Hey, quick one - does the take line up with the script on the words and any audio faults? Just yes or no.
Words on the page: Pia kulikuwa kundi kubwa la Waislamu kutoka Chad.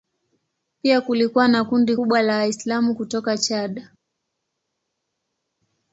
no